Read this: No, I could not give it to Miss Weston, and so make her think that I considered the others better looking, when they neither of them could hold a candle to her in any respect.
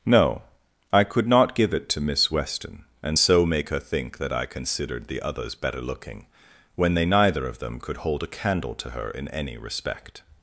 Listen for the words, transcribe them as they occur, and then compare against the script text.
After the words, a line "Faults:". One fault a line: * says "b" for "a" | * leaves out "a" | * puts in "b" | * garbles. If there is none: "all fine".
No, I could not give it to Miss Weston, and so make her think that I considered the others better looking, when they neither of them could hold a candle to her in any respect.
Faults:
all fine